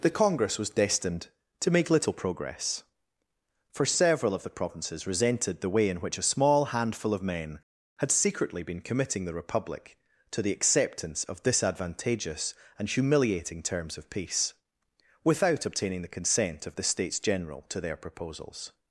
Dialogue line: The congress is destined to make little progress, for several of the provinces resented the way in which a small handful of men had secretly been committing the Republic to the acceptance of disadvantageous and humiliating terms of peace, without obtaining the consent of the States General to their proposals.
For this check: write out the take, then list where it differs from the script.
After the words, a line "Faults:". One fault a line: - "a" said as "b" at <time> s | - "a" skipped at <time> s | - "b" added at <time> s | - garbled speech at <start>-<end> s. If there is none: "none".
The congress was destined to make little progress, for several of the provinces resented the way in which a small handful of men had secretly been committing the Republic to the acceptance of disadvantageous and humiliating terms of peace, without obtaining the consent of the States General to their proposals.
Faults:
- "is" said as "was" at 0.6 s